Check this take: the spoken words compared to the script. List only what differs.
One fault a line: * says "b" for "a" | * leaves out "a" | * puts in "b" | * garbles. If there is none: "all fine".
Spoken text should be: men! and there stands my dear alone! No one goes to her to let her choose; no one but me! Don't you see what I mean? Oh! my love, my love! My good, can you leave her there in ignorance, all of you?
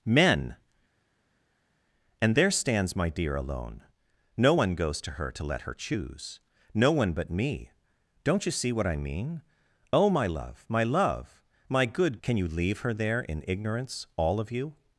all fine